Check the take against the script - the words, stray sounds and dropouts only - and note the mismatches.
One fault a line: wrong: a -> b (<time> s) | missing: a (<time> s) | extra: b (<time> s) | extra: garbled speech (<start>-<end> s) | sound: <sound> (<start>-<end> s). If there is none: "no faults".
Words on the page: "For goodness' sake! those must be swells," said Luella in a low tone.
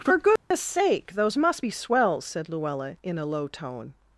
sound: dropout (0.4-0.5 s)